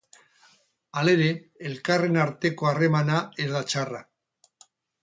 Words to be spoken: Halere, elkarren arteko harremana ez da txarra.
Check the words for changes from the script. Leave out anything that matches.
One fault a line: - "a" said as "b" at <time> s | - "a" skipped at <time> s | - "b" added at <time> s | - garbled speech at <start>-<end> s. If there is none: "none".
none